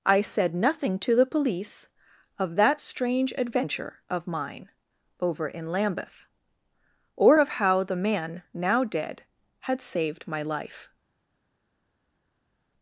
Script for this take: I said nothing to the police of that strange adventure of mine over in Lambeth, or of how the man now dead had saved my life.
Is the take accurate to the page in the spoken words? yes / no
yes